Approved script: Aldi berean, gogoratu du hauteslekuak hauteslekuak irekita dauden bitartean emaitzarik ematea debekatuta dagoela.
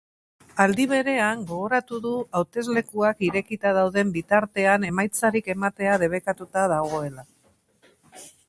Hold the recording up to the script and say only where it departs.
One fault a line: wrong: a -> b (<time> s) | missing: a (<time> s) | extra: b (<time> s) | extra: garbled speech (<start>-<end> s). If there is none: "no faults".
missing: hauteslekuak (3.3 s)